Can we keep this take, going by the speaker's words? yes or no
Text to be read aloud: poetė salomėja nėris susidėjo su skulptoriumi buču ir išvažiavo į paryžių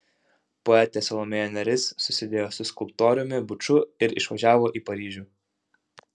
yes